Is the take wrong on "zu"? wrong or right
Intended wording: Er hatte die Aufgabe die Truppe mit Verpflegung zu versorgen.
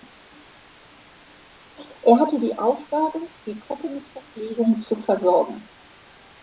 right